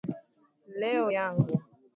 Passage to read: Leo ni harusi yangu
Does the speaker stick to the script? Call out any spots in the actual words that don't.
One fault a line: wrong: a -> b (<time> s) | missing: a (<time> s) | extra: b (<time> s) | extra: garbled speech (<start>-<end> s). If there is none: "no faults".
missing: ni harusi (1.1 s)